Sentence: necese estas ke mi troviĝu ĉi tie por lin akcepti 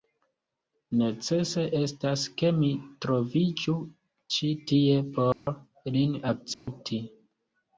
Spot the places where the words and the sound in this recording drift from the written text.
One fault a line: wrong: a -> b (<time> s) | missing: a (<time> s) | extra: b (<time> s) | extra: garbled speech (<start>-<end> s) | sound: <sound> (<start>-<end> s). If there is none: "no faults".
sound: dropout (5.3-5.5 s)
sound: dropout (6.5-6.7 s)